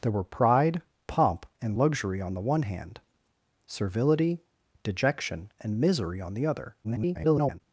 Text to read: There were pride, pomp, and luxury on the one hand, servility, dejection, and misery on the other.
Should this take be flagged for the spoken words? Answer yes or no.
yes